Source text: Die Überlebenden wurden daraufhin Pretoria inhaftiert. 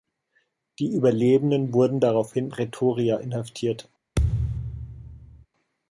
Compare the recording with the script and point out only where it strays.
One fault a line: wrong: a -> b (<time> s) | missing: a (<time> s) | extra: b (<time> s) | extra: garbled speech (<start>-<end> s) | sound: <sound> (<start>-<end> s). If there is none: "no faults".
sound: thud (4.2-5.5 s)